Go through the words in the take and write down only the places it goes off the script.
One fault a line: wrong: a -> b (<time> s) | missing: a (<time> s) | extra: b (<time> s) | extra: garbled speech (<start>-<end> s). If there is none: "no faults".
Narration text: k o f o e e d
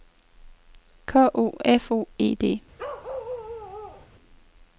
missing: e (2.3 s)